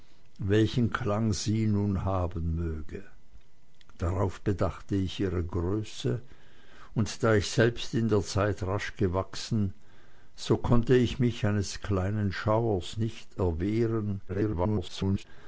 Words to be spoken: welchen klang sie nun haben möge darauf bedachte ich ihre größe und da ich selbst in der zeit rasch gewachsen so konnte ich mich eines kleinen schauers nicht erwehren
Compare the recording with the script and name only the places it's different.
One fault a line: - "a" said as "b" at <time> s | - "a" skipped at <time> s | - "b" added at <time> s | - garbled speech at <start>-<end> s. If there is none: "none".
- garbled speech at 14.3-15.2 s